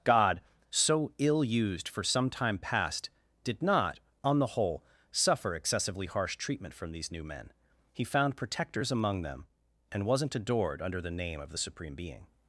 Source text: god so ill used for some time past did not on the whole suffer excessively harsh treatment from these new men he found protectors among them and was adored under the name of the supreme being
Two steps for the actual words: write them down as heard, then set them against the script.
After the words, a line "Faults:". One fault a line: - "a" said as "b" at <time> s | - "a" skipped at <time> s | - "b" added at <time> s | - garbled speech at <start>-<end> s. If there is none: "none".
god so ill used for some time past did not on the whole suffer excessively harsh treatment from these new men he found protectors among them and wasn't adored under the name of the supreme being
Faults:
- "was" said as "wasn't" at 10.1 s